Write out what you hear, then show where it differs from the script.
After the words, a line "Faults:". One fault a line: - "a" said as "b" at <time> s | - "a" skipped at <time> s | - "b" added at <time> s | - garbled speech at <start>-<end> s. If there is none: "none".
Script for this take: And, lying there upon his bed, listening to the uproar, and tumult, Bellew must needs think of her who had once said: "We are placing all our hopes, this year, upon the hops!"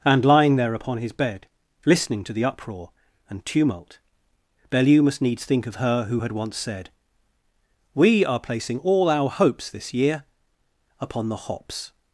And, lying there upon his bed, listening to the uproar, and tumult, Bellew must needs think of her who had once said: "We are placing all our hopes, this year, upon the hops!"
Faults:
none